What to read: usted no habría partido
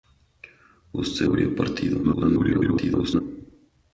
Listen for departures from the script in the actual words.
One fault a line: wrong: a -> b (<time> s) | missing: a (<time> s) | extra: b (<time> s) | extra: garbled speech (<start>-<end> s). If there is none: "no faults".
missing: no (1.3 s)
extra: garbled speech (2.0-3.2 s)